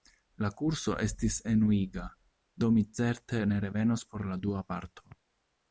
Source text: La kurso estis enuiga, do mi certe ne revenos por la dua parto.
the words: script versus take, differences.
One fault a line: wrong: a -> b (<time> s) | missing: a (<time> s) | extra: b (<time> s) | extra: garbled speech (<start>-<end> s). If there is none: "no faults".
no faults